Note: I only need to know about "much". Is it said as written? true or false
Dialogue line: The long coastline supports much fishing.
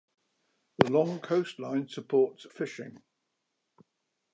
false